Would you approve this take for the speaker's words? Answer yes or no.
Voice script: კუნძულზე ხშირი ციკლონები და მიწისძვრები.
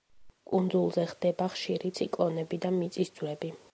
no